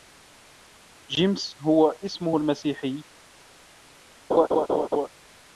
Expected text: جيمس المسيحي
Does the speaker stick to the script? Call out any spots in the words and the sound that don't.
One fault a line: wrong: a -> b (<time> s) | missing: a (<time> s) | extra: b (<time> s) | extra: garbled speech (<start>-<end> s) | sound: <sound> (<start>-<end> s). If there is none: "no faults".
extra: هو اسمه (1.6 s)
sound: laugh (4.3-5.1 s)